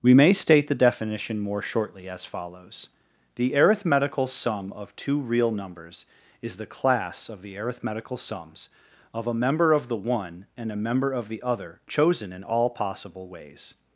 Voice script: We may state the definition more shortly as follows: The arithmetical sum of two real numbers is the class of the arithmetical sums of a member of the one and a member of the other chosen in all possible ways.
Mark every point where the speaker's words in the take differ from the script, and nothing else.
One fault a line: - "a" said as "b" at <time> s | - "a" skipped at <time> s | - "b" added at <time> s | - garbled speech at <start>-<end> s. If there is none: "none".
none